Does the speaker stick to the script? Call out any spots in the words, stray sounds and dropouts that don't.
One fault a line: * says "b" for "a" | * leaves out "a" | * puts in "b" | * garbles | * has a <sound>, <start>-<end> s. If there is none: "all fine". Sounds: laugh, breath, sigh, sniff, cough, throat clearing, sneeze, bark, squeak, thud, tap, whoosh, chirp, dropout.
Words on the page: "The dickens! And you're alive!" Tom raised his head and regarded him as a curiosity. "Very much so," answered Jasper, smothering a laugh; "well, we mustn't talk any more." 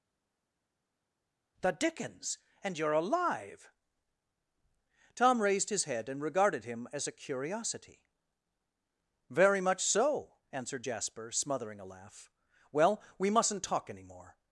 all fine